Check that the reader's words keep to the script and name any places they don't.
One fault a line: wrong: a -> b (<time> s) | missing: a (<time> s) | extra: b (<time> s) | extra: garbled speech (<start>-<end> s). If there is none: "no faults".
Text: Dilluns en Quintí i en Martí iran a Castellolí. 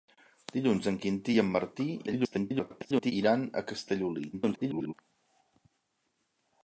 extra: garbled speech (2.1-3.1 s)
extra: garbled speech (4.3-4.9 s)